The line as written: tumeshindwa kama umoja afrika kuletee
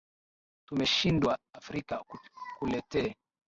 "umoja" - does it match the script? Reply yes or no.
no